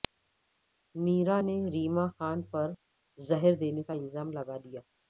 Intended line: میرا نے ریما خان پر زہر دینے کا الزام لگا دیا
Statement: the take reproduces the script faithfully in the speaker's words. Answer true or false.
true